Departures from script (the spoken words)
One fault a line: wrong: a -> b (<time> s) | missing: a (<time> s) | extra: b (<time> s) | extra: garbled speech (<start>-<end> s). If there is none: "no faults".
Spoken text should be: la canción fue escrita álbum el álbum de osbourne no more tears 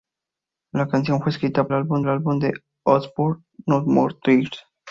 no faults